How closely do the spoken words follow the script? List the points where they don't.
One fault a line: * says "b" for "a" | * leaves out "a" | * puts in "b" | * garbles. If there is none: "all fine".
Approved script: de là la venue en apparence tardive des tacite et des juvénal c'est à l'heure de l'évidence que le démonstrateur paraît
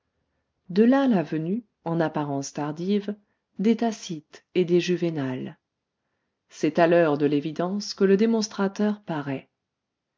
all fine